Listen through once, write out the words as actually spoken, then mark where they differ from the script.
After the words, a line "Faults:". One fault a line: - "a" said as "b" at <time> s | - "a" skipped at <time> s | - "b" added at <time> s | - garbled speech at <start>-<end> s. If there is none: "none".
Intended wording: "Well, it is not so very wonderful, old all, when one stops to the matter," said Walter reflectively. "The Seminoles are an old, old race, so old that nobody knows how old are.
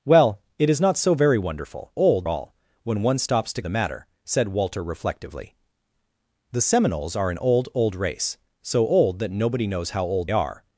"Well, it is not so very wonderful, old all, when one stops to the matter," said Walter reflectively. "The Seminoles are an old, old race, so old that nobody knows how old are.
Faults:
none